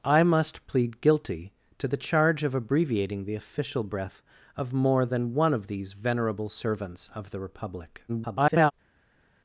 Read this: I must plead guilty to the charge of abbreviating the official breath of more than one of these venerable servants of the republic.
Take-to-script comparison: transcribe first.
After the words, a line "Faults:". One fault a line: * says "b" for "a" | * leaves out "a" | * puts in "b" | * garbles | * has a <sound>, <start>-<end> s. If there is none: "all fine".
I must plead guilty to the charge of abbreviating the official breath of more than one of these venerable servants of the republic. [garbled]
Faults:
* garbles